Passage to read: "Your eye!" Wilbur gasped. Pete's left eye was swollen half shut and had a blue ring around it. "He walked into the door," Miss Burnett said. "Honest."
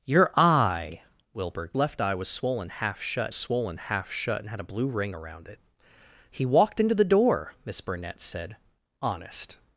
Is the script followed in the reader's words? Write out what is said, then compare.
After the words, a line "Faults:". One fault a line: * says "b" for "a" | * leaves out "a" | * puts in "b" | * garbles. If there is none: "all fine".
"Your eye!" Wilbur left eye was swollen half shut swollen half shut and had a blue ring around it. "He walked into the door," Miss Burnett said. "Honest."
Faults:
* leaves out "gasped Pete's"
* puts in "swollen half shut"